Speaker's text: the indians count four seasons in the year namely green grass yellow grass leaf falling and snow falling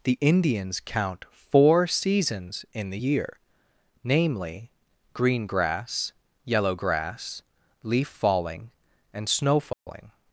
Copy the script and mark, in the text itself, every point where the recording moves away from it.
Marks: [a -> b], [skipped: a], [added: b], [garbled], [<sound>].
the indians count four seasons in the year namely green grass yellow grass leaf falling and snow falling [dropout]